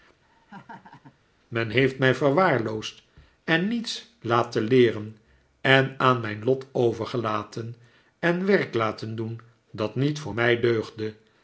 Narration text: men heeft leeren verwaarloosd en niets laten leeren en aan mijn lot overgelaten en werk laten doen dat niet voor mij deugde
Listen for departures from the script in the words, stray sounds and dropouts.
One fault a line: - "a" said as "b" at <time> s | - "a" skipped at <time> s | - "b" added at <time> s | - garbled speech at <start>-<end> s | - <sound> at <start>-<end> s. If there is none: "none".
- laugh at 0.2-1.2 s
- "leeren" said as "mij" at 2.0 s